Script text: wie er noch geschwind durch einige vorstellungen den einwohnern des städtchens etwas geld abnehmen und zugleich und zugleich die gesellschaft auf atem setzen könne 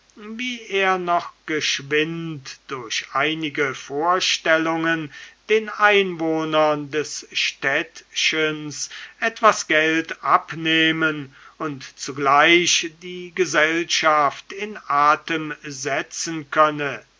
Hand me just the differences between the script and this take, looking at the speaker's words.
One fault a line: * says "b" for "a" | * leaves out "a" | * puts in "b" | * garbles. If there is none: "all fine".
* leaves out "und zugleich"
* says "in" for "auf"